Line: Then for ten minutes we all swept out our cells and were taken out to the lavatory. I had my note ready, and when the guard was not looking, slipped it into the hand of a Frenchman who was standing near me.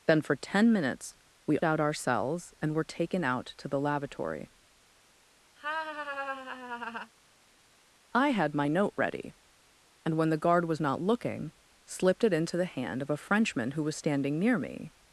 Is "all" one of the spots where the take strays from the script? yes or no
yes